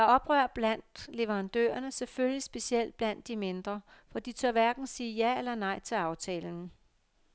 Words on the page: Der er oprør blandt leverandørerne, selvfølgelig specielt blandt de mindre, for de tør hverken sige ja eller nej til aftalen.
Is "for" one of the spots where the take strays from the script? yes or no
no